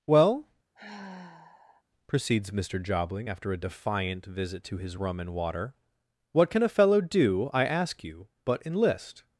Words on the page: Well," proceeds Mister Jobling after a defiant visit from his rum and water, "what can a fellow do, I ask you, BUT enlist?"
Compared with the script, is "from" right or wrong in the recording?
wrong